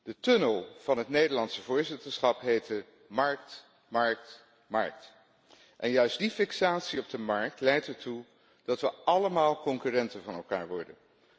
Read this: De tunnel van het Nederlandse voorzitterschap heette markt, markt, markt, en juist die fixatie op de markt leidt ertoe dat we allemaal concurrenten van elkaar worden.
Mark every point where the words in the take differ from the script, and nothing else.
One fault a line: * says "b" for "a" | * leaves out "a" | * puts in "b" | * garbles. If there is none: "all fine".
all fine